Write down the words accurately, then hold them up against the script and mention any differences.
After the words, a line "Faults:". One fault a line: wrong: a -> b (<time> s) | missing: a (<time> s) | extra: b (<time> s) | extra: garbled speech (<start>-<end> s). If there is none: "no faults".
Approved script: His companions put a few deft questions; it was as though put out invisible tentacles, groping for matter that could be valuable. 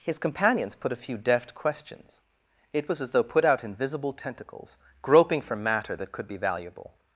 His companions put a few deft questions; it was as though put out invisible tentacles, groping for matter that could be valuable.
Faults:
no faults